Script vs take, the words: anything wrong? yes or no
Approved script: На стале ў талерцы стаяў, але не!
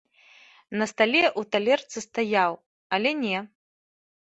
no